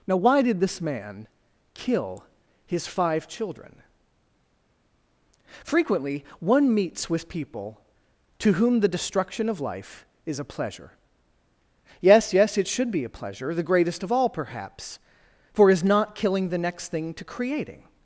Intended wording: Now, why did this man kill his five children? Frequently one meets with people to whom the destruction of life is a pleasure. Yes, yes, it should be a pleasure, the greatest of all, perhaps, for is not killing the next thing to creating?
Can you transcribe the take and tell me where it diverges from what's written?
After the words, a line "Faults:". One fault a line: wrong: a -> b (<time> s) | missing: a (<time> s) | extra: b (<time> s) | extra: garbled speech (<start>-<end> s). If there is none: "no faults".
Now, why did this man kill his five children? Frequently one meets with people to whom the destruction of life is a pleasure. Yes, yes, it should be a pleasure, the greatest of all, perhaps, for is not killing the next thing to creating?
Faults:
no faults